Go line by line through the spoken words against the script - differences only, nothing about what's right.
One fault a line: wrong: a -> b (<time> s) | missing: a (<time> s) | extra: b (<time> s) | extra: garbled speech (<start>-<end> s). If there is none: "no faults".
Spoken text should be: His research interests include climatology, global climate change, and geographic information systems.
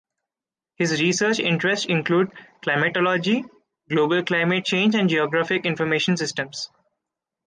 no faults